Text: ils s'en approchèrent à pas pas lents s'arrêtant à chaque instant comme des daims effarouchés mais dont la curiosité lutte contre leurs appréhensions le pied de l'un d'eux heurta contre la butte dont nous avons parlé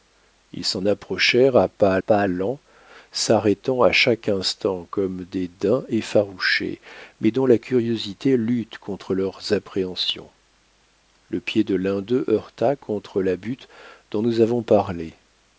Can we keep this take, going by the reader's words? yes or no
yes